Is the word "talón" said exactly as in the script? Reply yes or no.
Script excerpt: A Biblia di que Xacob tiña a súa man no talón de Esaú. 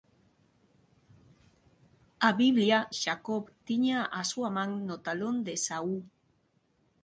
yes